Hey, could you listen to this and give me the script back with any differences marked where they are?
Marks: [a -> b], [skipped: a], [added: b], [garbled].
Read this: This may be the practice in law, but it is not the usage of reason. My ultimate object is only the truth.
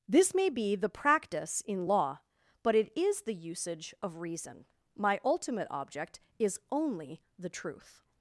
This may be the practice in law, but it is [skipped: not] the usage of reason. My ultimate object is only the truth.